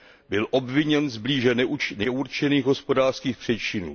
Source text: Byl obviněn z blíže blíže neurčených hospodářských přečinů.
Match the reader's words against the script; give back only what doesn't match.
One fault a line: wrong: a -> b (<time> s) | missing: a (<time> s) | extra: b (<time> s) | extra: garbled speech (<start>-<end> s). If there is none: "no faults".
missing: blíže (1.6 s)